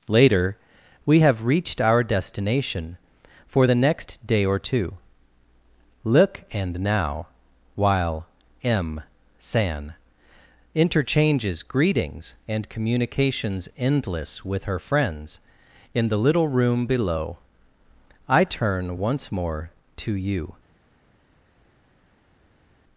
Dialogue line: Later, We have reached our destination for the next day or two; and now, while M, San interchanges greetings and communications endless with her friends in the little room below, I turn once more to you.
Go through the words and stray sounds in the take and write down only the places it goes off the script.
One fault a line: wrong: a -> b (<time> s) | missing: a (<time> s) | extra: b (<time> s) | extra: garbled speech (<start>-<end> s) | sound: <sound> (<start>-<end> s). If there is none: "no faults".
extra: look (6.0 s)